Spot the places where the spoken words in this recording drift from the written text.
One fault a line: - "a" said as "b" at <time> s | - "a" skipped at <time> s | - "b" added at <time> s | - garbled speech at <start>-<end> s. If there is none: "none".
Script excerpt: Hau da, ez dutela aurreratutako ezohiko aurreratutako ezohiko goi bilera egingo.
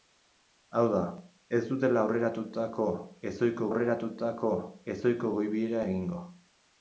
none